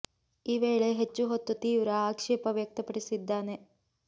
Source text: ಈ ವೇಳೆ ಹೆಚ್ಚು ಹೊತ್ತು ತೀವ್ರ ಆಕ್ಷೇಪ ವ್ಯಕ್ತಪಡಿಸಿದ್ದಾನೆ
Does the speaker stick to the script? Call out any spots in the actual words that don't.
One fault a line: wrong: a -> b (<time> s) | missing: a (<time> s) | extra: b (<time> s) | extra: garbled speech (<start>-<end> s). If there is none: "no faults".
no faults